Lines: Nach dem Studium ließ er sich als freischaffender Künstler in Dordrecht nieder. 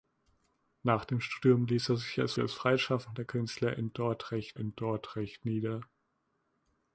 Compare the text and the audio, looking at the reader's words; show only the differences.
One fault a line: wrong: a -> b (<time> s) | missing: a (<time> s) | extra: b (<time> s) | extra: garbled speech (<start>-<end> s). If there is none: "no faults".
extra: als (2.4 s)
extra: in Dordrecht (4.6 s)